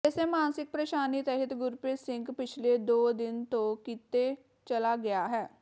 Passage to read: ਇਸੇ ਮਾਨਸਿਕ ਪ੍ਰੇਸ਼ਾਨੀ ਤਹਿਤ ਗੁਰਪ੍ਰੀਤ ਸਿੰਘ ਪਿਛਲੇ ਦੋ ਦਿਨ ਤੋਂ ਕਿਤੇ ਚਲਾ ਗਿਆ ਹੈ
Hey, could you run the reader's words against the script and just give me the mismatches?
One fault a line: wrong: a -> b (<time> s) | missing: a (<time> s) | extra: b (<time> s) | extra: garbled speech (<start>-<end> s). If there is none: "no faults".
no faults